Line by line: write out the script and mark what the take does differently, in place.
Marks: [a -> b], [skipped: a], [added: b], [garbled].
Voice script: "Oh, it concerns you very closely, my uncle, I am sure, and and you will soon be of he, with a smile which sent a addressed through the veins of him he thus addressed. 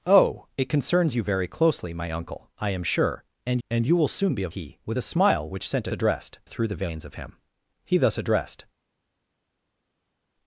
"Oh, it concerns you very closely, my uncle, I am sure, and and you will soon be of he, with a smile which sent a addressed through the veins of him he thus addressed.